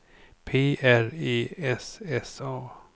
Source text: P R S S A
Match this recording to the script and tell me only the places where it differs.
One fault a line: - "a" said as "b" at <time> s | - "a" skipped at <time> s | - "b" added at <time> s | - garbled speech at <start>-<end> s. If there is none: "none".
- "E" added at 1.1 s